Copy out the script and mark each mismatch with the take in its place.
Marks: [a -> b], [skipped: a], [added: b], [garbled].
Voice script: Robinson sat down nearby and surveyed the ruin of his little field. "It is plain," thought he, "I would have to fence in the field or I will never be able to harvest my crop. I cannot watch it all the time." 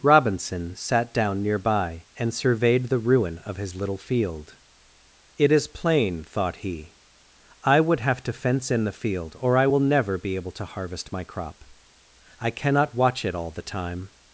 Robinson sat down nearby and surveyed the ruin of his little field. "It is plain," thought he, "I would have to fence in the field or I will never be able to harvest my crop. I cannot watch it all the time."